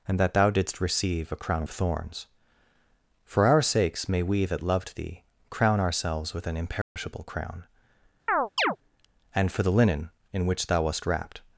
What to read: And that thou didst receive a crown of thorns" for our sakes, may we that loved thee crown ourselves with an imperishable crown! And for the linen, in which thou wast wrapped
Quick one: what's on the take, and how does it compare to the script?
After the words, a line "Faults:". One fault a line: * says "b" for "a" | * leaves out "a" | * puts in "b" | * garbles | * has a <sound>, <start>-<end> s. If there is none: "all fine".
And that thou didst receive a crown of thorns" for our sakes, may we that loved thee crown ourselves with an imperishable crown! And for the linen, in which thou wast wrapped
Faults:
* has a dropout, 6.8-7.0 s
* has a chirp, 8.3-8.8 s